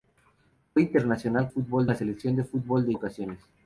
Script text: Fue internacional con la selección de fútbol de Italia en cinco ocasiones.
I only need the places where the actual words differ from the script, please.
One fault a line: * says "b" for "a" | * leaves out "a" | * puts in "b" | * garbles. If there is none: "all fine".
* says "fútbol" for "con"
* leaves out "Italia en cinco"